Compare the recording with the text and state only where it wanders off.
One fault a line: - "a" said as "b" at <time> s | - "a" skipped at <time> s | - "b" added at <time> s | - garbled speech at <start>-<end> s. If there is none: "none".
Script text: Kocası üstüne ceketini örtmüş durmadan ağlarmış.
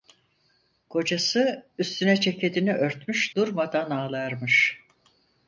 none